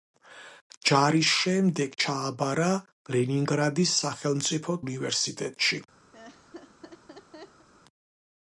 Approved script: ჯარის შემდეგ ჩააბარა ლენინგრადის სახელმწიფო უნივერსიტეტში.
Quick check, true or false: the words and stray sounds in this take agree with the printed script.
false